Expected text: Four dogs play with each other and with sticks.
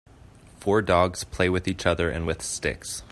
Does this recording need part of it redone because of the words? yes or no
no